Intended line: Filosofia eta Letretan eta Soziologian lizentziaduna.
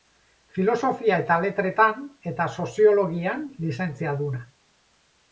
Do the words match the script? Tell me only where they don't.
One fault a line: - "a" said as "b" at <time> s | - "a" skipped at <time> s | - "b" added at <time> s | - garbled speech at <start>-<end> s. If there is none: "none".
none